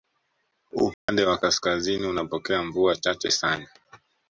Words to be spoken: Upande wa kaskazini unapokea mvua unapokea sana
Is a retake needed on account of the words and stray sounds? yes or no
yes